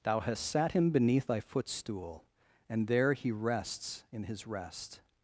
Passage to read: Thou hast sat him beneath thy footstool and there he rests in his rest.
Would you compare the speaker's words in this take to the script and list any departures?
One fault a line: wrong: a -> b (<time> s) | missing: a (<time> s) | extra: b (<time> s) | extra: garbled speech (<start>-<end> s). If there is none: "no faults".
no faults